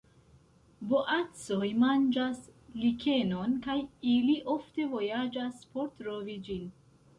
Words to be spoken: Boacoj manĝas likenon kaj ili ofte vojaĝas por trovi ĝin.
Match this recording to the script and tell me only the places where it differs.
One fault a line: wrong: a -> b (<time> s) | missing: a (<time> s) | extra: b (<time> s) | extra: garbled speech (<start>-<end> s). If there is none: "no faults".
no faults